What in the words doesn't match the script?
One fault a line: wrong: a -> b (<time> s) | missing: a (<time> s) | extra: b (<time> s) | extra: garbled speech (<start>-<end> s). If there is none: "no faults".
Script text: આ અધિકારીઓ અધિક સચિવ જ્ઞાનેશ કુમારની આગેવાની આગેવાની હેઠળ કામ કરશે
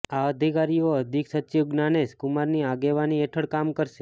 missing: આગેવાની (3.2 s)